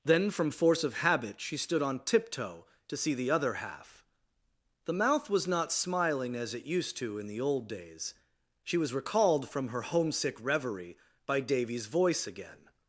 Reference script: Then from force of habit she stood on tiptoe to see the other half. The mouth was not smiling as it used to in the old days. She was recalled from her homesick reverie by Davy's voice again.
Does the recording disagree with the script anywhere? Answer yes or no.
no